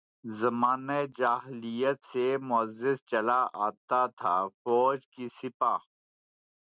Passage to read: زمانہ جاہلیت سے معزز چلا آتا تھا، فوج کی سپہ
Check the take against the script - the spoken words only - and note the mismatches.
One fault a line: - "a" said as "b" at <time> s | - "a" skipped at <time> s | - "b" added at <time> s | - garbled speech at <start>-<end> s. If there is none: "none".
none